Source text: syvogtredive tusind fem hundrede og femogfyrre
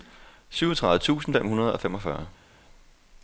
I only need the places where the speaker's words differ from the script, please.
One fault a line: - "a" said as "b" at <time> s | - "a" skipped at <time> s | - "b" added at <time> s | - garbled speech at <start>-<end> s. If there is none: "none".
none